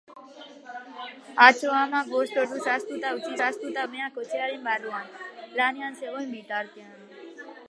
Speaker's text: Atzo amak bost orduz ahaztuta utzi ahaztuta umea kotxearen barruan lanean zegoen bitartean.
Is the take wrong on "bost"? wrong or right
right